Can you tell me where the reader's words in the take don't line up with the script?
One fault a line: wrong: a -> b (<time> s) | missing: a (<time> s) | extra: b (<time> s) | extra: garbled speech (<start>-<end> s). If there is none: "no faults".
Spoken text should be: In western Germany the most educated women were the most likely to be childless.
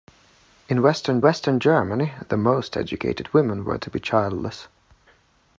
extra: western (1.2 s)
missing: the most likely (3.8 s)